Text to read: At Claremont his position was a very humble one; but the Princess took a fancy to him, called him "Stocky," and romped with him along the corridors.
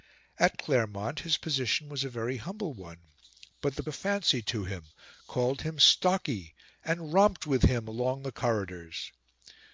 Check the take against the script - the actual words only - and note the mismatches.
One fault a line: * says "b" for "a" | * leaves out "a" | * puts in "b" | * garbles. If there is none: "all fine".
* leaves out "Princess took"